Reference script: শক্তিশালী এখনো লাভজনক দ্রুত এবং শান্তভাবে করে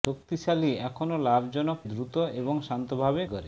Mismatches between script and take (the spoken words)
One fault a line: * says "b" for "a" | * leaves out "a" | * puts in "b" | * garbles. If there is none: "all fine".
all fine